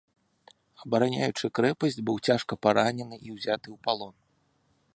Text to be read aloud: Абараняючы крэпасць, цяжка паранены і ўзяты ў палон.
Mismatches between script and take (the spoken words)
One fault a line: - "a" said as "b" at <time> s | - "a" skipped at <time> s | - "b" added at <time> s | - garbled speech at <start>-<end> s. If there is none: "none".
- "быў" added at 2.1 s